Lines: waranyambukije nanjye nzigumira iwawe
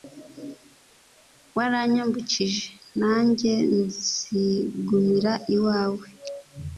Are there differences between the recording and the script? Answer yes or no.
no